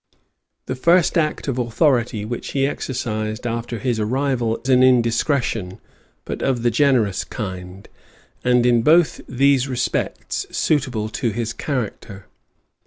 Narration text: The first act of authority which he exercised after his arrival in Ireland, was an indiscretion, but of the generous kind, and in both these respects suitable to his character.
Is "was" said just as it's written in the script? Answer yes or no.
no